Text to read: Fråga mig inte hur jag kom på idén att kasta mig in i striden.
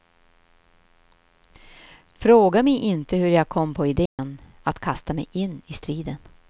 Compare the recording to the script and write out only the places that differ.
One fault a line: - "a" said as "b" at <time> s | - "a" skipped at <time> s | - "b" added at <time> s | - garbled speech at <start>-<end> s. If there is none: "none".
none